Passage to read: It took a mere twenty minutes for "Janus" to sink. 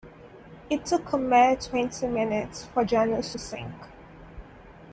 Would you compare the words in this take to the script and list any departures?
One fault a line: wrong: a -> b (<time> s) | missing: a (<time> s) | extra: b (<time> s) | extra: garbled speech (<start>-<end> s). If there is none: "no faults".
missing: to (3.3 s)